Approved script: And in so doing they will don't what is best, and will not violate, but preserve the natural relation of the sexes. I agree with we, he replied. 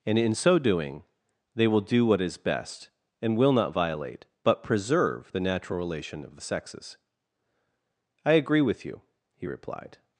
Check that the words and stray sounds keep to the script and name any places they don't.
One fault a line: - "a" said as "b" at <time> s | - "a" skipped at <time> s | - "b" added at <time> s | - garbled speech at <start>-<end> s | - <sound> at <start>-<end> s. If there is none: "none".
- "don't" said as "do" at 1.8 s
- "we" said as "you" at 8.8 s